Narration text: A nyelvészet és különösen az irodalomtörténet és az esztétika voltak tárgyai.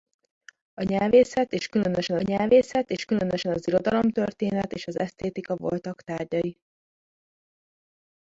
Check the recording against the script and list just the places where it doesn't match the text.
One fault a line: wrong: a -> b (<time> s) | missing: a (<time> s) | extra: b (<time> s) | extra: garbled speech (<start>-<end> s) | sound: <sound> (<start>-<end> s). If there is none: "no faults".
extra: nyelvészet és különösen (2.2 s)